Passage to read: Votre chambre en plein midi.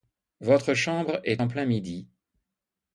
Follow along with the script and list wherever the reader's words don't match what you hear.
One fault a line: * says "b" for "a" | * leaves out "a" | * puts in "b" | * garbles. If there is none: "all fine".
* puts in "est"